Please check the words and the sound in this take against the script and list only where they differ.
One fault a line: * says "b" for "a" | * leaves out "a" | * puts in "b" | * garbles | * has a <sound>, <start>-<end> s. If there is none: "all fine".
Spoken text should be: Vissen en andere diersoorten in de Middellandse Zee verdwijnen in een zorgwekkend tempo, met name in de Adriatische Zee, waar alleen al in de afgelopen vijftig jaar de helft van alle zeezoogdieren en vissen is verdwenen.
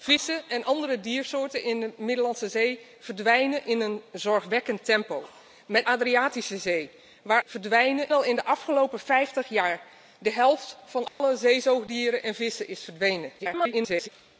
* leaves out "name in de"
* says "verdwijnen" for "alleen"
* has a dropout, 11.1-11.2 s
* garbles